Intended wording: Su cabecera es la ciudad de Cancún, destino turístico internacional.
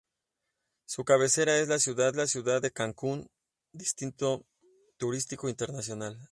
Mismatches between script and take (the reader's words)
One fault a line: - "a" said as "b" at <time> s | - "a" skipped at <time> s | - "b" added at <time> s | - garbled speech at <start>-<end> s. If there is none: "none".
- "la ciudad" added at 2.1 s